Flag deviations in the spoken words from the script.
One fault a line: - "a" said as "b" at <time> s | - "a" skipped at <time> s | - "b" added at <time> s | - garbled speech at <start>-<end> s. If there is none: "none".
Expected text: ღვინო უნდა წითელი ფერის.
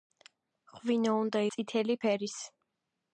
none